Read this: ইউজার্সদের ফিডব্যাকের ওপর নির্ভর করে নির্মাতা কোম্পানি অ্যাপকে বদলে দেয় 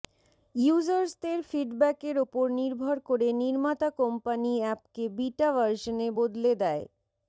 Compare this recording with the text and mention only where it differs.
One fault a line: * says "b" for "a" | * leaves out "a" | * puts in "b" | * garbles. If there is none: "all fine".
* puts in "বিটা ভার্শনে"